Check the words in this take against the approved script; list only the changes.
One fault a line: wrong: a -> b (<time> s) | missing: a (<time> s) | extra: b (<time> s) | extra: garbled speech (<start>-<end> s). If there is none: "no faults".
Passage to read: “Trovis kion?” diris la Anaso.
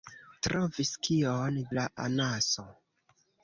missing: diris (1.6 s)